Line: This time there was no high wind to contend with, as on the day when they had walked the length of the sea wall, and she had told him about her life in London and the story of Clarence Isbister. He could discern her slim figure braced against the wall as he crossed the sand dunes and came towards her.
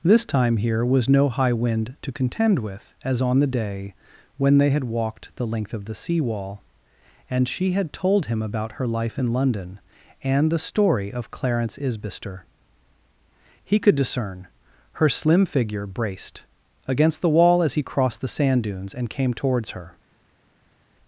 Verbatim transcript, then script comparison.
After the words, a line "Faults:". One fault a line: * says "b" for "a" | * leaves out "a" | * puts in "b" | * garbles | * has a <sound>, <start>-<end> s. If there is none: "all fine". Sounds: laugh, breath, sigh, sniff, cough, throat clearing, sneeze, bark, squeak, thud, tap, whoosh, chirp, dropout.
This time here was no high wind to contend with, as on the day when they had walked the length of the sea wall, and she had told him about her life in London and the story of Clarence Isbister. He could discern her slim figure braced against the wall as he crossed the sand dunes and came towards her.
Faults:
* says "here" for "there"